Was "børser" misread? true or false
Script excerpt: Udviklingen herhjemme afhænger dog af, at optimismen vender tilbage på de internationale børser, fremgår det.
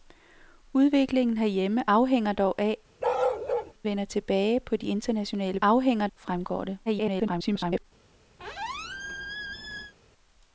true